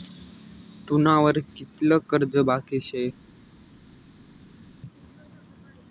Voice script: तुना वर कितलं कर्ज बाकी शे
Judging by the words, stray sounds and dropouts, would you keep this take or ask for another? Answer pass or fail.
pass